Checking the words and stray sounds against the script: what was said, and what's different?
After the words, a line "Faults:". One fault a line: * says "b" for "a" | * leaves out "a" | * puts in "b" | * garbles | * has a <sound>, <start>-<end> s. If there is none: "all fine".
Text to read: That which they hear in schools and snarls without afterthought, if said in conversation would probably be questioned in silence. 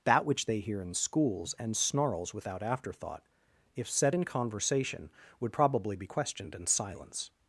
That which they hear in schools and snarls without afterthought, if said in conversation would probably be questioned in silence.
Faults:
all fine